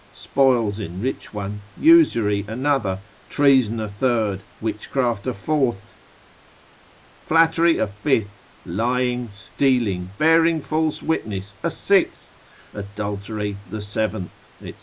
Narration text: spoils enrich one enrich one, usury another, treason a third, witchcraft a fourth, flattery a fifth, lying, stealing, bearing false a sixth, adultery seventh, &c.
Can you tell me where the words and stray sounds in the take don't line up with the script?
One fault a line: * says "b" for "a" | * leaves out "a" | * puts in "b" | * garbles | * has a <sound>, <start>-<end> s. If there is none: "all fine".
* leaves out "enrich one"
* puts in "witness"
* puts in "the"